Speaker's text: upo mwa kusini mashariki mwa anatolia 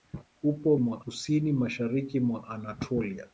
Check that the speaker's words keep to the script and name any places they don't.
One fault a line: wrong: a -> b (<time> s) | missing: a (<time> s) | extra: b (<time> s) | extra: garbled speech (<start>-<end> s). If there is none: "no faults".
no faults